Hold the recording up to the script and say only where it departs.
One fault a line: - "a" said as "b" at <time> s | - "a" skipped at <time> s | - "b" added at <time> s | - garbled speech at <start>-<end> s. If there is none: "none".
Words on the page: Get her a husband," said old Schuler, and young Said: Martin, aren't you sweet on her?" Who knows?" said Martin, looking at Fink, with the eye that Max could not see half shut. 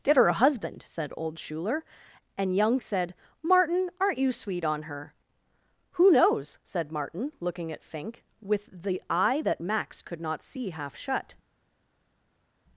none